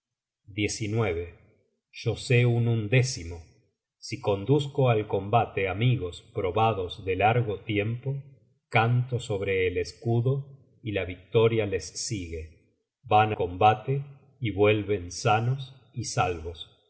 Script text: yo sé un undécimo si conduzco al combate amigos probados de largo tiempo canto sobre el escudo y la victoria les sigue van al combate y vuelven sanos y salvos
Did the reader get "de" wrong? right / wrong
right